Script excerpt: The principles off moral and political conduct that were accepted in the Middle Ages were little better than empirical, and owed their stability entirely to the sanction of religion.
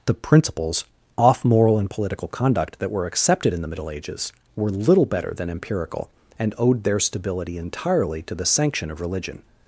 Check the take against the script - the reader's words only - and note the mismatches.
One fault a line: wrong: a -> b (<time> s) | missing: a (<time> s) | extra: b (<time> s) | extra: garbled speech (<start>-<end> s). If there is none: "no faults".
no faults